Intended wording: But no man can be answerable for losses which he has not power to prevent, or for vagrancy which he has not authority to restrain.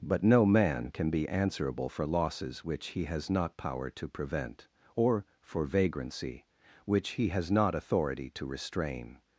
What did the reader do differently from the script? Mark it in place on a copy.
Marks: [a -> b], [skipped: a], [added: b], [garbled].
But no man can be answerable for losses which he has not power to prevent, or for vagrancy which he has not authority to restrain.